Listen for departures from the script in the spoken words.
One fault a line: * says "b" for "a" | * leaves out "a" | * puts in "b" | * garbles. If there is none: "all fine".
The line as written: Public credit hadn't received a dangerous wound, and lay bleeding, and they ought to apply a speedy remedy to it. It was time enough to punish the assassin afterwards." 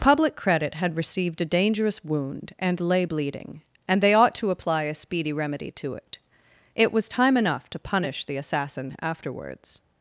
* says "had" for "hadn't"